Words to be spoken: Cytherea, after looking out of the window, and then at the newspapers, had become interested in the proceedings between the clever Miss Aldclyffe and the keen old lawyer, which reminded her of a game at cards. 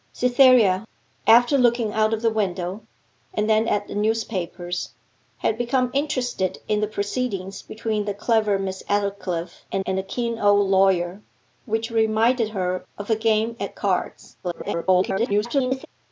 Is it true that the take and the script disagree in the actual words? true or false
true